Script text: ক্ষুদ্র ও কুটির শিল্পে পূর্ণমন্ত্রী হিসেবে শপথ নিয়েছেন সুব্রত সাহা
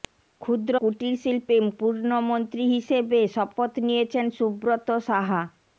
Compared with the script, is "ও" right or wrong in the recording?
wrong